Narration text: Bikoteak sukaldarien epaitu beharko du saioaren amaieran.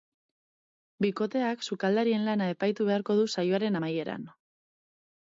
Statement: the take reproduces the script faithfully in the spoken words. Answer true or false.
false